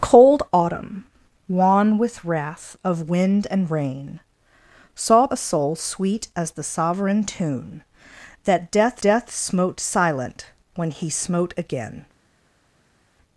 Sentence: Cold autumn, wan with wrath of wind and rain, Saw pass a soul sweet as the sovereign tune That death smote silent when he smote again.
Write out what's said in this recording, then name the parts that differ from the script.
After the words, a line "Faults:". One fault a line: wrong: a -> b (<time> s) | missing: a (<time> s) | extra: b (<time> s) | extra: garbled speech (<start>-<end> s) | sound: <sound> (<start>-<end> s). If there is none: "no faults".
Cold autumn, wan with wrath of wind and rain, Saw a soul sweet as the sovereign tune That death death smote silent when he smote again.
Faults:
missing: pass (5.3 s)
extra: death (9.0 s)